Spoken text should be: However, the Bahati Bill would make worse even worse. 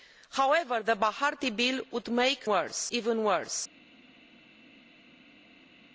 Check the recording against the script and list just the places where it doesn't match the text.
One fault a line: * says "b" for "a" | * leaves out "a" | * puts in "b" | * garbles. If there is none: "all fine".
all fine